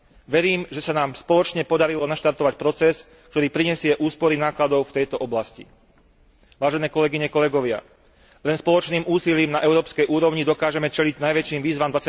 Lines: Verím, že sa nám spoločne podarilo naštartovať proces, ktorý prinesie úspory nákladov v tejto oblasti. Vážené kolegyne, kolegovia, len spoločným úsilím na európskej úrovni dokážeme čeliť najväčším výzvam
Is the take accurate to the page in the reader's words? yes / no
yes